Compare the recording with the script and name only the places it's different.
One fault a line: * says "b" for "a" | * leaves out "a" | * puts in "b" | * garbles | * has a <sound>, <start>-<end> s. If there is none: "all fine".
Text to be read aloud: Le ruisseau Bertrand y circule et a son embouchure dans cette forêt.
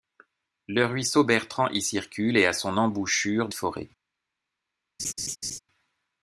* leaves out "dans cette"
* has a laugh, 5.0-5.6 s